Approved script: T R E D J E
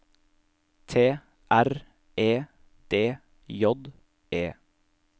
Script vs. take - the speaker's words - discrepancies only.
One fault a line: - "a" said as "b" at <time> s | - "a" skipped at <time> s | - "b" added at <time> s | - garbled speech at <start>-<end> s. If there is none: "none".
none